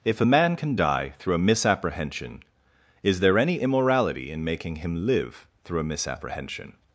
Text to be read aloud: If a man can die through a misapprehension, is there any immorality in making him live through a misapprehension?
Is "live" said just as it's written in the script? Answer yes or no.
yes